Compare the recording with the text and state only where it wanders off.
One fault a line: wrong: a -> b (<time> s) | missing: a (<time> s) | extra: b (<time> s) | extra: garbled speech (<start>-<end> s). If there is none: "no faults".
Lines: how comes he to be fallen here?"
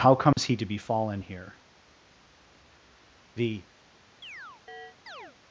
extra: The (3.3 s)